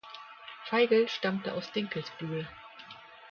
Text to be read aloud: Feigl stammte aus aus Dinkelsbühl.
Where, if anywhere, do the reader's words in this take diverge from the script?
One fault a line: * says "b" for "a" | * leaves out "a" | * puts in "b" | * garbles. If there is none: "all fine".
* leaves out "aus"